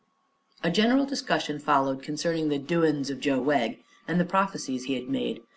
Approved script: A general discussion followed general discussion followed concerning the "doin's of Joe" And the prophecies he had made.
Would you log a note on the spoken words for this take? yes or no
yes